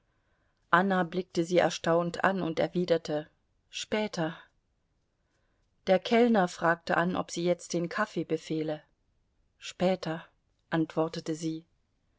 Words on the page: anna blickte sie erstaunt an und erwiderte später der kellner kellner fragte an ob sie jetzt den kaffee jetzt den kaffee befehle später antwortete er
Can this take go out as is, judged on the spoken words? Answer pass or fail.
fail